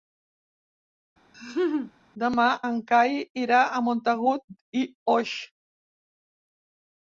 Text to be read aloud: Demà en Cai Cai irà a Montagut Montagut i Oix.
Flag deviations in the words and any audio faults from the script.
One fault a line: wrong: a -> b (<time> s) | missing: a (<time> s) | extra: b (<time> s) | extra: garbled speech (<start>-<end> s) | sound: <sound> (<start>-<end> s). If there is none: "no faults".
sound: laugh (1.3-1.9 s)
missing: Cai (3.2 s)
missing: Montagut (4.4 s)